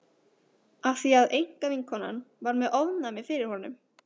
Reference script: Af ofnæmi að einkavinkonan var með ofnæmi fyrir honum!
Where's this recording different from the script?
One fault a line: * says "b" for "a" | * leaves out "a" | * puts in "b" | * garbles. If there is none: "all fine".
* says "því" for "ofnæmi"